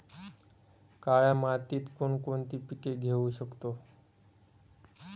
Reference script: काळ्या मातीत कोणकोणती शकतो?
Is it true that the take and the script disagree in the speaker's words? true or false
true